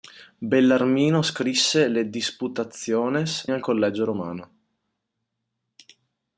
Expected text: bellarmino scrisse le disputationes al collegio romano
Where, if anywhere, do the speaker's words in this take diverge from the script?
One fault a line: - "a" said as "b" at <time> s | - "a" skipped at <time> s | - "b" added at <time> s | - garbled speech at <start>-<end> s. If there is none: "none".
none